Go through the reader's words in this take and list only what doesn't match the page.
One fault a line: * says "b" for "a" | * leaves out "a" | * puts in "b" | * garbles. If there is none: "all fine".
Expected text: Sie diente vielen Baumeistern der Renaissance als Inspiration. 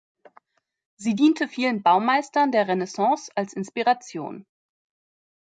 all fine